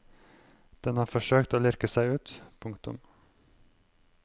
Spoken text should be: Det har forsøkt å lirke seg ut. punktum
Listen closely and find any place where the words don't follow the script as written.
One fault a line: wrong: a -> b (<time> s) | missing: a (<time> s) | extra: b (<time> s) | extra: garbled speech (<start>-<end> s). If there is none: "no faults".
wrong: Det -> Den (0.8 s)